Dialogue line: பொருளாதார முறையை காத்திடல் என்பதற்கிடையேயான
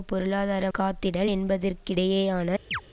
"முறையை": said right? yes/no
no